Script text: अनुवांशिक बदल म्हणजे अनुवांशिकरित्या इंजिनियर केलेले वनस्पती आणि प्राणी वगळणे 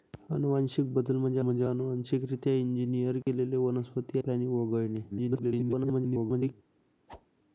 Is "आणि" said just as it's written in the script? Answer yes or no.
no